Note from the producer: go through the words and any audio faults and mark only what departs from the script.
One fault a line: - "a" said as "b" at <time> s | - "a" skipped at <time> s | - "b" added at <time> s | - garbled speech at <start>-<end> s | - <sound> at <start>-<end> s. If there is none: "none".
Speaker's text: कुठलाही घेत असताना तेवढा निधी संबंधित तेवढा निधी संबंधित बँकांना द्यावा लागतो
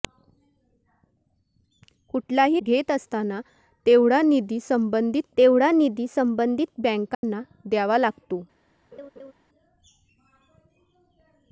- dropout at 7.1-7.2 s
- laugh at 8.9-9.3 s